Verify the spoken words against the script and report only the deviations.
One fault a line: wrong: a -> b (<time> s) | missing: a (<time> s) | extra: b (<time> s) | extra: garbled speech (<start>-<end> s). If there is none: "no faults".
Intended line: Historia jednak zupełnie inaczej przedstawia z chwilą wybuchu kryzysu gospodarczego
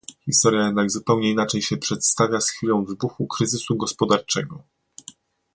extra: się (1.6 s)